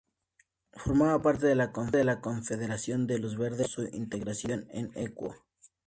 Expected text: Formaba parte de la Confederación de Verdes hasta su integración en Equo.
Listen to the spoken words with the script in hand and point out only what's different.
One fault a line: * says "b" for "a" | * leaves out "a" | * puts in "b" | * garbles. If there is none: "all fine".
* puts in "Los"